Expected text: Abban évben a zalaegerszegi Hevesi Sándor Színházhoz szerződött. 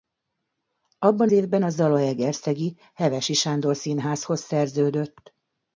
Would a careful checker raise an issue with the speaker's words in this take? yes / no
no